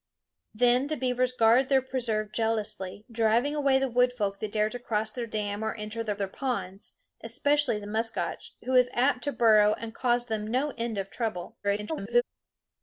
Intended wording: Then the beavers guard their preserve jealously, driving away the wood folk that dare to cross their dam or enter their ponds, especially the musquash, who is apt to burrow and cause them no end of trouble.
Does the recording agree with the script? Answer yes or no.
no